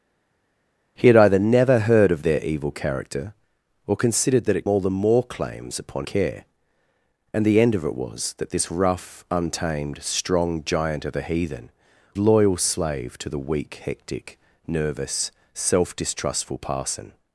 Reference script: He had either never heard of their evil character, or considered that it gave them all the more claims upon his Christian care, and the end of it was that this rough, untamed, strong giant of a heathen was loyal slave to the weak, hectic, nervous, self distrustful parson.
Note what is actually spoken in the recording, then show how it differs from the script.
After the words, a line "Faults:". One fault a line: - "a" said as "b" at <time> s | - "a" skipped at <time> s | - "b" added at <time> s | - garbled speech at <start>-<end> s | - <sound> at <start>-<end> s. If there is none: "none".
He had either never heard of their evil character, or considered that it all the more claims upon care, and the end of it was that this rough, untamed, strong giant of a heathen loyal slave to the weak, hectic, nervous, self distrustful parson.
Faults:
- "gave them" skipped at 4.6 s
- "his Christian" skipped at 6.0 s
- "was" skipped at 11.7 s